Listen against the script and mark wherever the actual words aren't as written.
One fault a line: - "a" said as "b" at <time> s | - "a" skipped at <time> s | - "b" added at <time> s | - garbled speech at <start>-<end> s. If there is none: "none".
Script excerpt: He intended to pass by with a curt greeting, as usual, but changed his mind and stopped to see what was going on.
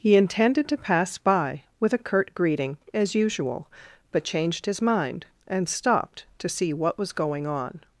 none